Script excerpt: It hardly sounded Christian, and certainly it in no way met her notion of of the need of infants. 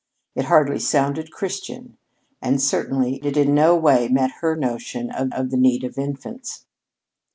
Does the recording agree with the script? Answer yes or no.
yes